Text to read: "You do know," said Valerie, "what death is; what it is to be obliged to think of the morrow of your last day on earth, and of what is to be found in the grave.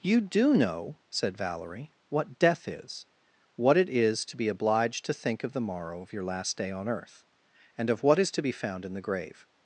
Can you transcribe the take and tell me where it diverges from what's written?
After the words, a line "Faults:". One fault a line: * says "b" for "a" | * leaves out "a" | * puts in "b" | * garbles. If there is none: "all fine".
"You do know," said Valerie, "what death is; what it is to be obliged to think of the morrow of your last day on earth, and of what is to be found in the grave.
Faults:
all fine